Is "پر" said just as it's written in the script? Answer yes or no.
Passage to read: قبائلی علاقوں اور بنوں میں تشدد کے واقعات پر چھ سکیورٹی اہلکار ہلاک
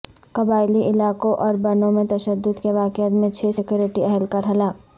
no